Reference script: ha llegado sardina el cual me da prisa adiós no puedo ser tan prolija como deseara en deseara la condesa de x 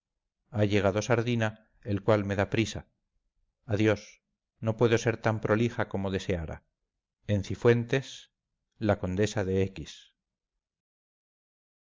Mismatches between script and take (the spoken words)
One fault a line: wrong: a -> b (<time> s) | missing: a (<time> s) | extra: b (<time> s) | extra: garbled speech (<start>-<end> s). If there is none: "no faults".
wrong: deseara -> cifuentes (7.4 s)